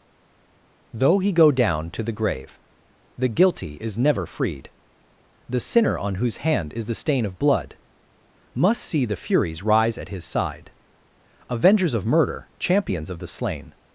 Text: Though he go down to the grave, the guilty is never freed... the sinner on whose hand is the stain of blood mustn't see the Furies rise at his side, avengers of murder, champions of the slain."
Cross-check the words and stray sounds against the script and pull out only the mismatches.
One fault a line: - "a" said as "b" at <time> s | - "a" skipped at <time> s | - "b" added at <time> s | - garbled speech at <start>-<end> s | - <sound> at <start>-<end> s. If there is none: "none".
- "mustn't" said as "must" at 8.5 s